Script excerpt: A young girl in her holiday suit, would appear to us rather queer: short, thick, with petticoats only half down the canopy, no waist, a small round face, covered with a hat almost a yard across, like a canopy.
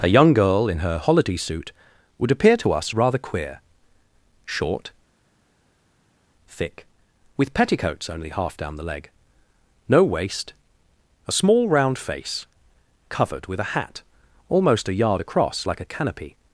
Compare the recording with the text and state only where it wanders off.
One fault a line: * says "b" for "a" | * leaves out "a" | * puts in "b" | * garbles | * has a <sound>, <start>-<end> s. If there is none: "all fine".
* says "leg" for "canopy"